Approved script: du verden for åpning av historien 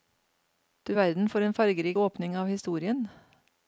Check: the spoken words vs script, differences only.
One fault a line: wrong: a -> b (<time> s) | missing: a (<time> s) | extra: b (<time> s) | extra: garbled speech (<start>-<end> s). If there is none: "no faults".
extra: en fargerik (1.4 s)